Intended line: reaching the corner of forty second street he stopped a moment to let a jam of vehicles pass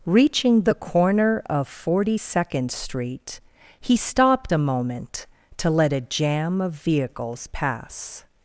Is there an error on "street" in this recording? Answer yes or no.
no